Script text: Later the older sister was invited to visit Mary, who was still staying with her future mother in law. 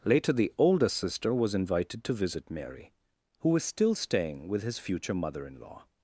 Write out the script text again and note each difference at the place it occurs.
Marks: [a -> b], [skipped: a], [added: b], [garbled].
Later the older sister was invited to visit Mary, who was still staying with [her -> his] future mother in law.